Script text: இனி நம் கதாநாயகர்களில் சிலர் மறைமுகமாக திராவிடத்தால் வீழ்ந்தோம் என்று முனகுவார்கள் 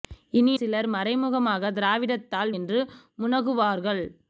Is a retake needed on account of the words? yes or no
yes